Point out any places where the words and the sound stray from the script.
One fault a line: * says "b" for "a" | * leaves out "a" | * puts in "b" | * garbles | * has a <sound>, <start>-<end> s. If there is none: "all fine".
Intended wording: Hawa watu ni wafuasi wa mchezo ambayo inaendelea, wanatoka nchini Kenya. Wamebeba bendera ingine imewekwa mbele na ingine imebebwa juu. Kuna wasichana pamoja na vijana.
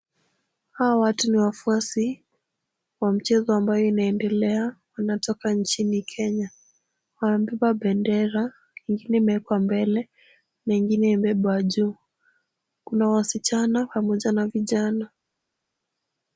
all fine